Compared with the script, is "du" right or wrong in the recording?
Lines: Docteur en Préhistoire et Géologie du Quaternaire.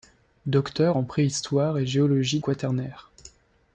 wrong